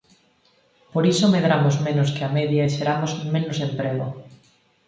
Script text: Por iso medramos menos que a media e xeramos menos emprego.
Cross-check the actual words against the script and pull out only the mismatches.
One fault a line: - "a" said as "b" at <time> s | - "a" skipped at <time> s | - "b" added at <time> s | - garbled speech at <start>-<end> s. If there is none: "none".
none